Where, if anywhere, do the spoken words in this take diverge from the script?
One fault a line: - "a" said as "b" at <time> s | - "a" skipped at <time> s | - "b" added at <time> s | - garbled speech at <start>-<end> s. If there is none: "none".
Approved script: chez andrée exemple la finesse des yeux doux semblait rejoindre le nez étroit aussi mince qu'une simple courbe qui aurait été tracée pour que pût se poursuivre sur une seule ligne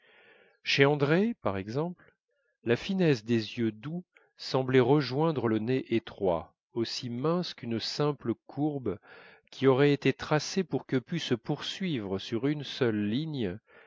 - "par" added at 1.4 s